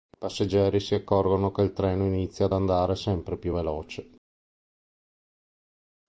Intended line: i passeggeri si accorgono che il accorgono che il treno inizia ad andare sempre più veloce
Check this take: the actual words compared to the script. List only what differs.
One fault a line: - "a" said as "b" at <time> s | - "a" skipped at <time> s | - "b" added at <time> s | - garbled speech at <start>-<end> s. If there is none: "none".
- "accorgono che il" skipped at 1.7 s